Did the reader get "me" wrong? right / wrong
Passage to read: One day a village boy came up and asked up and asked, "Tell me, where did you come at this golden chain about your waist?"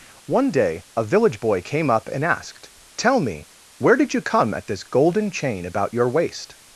right